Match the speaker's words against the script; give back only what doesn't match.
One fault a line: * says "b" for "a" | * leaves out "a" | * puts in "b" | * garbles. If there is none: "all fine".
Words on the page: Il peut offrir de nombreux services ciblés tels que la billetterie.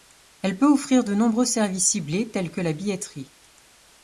* says "Elle" for "Il"